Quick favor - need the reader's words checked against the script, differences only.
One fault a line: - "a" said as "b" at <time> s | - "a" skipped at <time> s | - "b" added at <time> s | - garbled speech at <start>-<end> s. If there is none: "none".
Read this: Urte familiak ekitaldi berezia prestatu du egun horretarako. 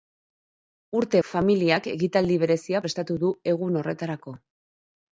none